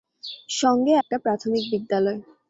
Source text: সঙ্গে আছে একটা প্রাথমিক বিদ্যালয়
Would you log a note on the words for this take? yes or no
yes